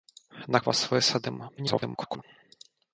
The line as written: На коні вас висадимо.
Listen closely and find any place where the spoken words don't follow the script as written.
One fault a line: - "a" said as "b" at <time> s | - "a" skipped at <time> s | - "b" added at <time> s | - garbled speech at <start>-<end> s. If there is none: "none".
- "коні" skipped at 0.6 s
- garbled speech at 1.6-2.2 s